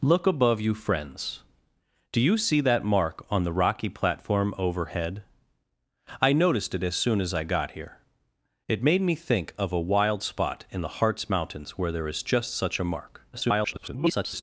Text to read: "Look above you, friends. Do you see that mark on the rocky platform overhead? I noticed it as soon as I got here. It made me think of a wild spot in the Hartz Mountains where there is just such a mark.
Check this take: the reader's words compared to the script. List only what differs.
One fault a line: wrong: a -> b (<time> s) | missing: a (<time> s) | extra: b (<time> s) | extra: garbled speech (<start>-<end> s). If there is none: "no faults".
extra: garbled speech (13.3-14.4 s)